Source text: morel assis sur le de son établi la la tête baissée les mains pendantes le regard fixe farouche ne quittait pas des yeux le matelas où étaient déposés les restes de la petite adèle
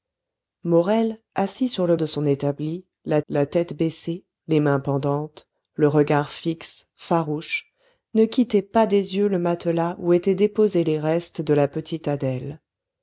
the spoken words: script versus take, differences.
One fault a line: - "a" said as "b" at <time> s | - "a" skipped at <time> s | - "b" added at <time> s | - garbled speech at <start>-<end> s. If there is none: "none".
none